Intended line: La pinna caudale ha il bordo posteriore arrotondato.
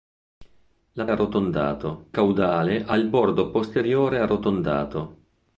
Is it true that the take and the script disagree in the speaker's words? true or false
true